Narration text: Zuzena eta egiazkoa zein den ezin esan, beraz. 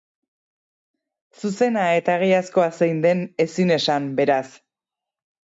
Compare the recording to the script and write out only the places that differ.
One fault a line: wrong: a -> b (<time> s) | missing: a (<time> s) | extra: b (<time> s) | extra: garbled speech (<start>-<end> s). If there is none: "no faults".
no faults